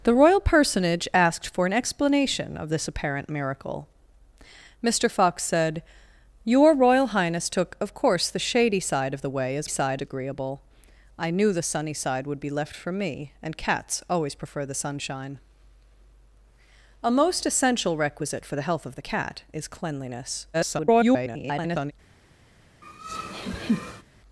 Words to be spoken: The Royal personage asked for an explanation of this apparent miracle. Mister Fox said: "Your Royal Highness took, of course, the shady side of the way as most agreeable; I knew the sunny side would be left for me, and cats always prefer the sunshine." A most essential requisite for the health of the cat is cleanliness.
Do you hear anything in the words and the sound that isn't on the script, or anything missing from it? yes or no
yes